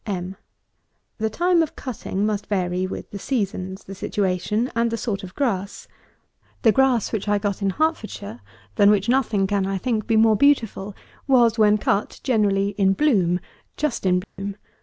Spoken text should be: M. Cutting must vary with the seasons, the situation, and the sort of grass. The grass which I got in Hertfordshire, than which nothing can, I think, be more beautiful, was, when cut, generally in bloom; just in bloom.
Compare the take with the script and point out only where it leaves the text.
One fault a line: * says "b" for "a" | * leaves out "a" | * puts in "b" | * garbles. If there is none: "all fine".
* puts in "The time of"